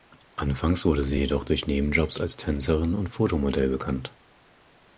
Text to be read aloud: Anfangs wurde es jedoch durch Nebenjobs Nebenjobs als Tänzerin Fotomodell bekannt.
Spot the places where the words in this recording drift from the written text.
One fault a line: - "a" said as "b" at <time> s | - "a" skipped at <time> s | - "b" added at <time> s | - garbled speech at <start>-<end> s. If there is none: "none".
- "es" said as "sie" at 1.1 s
- "Nebenjobs" skipped at 2.2 s
- "und" added at 2.9 s